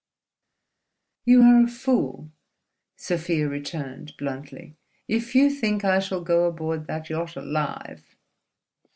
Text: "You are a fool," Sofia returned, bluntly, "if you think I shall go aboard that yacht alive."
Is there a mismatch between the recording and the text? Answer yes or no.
no